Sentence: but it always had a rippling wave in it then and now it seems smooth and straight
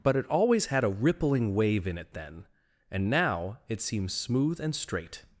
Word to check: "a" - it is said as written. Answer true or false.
true